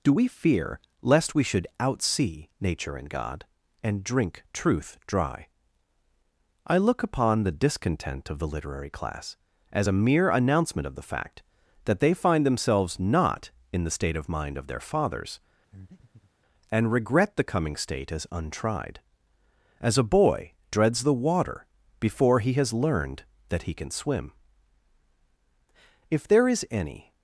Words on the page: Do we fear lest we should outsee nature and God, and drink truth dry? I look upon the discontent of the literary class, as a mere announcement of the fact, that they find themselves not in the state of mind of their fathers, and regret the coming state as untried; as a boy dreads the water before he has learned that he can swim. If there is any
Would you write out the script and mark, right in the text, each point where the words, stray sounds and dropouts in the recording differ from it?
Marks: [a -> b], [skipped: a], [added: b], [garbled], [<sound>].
Do we fear lest we should outsee nature and God, and drink truth dry? I look upon the discontent of the literary class, as a mere announcement of the fact, that they find themselves not in the state of mind of their fathers, [breath] and regret the coming state as untried; as a boy dreads the water before he has learned that he can swim. If there is any